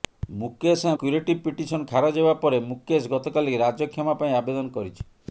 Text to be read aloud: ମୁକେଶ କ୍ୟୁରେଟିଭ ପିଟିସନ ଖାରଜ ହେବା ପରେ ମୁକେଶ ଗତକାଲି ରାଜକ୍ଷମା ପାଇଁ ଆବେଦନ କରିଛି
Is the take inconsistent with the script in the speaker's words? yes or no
no